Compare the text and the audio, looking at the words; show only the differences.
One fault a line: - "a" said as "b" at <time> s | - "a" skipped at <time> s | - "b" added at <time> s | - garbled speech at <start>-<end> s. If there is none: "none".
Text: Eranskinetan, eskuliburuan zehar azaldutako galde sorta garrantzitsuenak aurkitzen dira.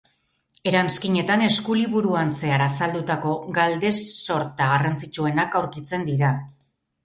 none